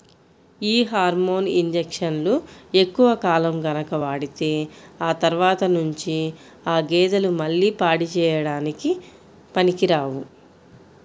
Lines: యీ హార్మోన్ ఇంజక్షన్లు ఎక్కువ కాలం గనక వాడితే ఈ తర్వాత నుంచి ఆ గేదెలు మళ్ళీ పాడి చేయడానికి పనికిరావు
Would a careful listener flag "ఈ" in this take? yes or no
yes